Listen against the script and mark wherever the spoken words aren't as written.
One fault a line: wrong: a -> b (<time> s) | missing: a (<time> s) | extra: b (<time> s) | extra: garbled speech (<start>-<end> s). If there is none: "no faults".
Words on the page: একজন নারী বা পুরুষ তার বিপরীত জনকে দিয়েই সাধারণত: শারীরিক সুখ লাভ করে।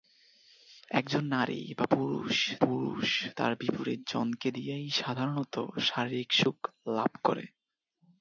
extra: পুরুষ (2.6 s)